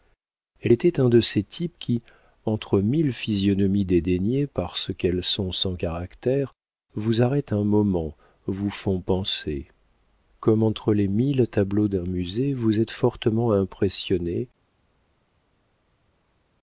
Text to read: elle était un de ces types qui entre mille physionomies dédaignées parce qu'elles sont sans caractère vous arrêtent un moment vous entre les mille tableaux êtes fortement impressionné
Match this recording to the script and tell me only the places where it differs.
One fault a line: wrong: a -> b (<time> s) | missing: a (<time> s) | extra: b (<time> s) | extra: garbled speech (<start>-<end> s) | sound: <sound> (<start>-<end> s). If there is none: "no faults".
extra: font penser comme (8.7 s)
extra: d'un musée vous (11.9 s)